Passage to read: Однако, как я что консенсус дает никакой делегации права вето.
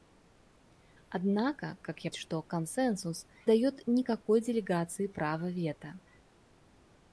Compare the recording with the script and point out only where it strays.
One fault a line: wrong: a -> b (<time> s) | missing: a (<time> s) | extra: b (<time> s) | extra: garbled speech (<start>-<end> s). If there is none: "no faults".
no faults